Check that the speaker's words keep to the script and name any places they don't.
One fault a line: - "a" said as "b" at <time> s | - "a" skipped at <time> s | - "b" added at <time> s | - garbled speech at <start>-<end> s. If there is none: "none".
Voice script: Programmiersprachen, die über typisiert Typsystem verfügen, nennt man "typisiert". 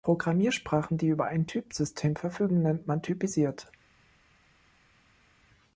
- "typisiert" said as "ein" at 1.2 s